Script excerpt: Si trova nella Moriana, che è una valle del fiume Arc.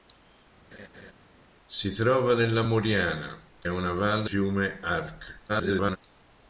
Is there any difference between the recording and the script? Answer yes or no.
yes